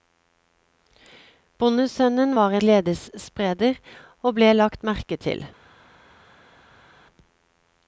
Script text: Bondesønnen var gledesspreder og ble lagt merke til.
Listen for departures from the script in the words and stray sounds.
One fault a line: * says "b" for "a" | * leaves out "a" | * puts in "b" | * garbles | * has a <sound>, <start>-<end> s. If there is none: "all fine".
all fine